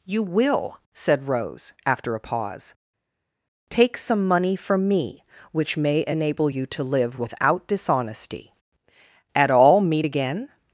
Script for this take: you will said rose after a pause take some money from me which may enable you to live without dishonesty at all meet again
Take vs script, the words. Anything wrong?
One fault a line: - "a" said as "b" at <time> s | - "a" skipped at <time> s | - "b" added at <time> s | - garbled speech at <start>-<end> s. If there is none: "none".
none